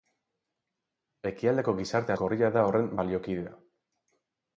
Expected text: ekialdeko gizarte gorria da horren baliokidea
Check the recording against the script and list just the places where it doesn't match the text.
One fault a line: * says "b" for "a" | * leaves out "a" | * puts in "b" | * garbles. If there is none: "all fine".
all fine